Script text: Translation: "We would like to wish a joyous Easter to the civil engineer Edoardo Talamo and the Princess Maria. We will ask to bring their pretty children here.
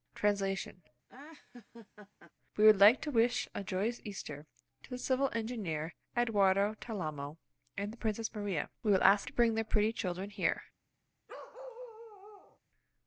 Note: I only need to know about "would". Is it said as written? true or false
true